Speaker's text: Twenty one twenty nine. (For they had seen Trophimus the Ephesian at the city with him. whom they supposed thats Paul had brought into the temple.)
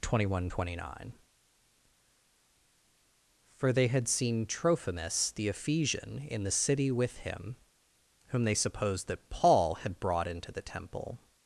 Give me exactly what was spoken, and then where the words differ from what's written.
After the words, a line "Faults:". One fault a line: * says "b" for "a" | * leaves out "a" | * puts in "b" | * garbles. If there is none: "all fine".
Twenty one twenty nine. (For they had seen Trophimus the Ephesian in the city with him. whom they supposed that Paul had brought into the temple.)
Faults:
* says "in" for "at"
* says "that" for "thats"